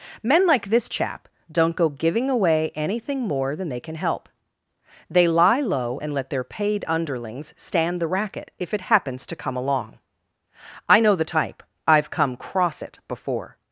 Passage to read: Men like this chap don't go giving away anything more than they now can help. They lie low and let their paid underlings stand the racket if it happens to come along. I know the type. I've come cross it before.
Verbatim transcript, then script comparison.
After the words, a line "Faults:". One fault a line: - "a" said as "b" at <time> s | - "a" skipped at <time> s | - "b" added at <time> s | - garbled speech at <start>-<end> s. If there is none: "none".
Men like this chap don't go giving away anything more than they can help. They lie low and let their paid underlings stand the racket if it happens to come along. I know the type. I've come cross it before.
Faults:
- "now" skipped at 3.8 s